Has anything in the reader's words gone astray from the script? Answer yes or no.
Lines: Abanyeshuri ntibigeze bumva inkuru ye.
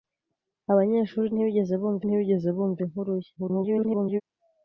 yes